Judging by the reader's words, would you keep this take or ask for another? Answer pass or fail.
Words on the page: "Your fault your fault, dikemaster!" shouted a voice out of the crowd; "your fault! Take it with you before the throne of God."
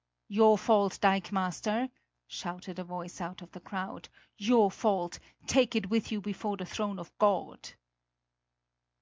fail